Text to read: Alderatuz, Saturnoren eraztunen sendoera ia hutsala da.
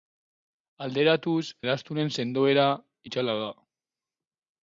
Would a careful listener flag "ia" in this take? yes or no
yes